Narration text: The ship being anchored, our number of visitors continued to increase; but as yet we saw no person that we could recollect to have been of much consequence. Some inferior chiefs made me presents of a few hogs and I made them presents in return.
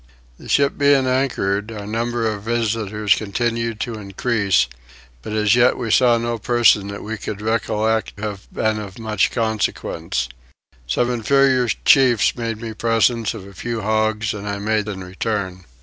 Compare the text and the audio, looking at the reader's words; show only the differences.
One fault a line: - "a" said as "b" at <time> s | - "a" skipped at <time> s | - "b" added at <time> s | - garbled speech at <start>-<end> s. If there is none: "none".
- "to" skipped at 8.2 s
- "them presents" skipped at 14.9 s